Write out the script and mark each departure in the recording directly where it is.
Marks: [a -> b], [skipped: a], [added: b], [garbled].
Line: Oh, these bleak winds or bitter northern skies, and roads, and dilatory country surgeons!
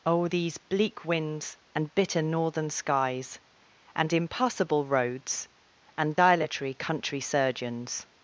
Oh, these bleak winds [or -> and] bitter northern skies, and [added: impassable] roads, and dilatory country surgeons!